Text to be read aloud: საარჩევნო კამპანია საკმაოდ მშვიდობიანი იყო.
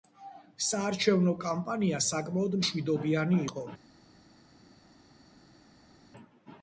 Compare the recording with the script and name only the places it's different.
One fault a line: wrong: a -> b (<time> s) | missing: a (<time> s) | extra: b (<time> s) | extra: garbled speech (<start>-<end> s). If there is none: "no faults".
no faults